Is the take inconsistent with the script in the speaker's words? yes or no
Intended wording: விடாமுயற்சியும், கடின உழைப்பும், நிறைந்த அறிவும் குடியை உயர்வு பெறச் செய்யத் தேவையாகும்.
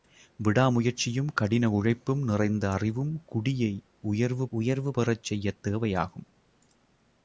yes